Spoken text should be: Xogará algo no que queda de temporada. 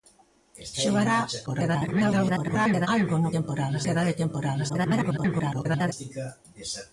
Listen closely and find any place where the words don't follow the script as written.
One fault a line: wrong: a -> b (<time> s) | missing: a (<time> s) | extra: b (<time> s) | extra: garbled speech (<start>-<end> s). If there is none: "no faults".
extra: garbled speech (1.5-2.9 s)
wrong: que -> temporada (3.4 s)
extra: garbled speech (4.7-5.9 s)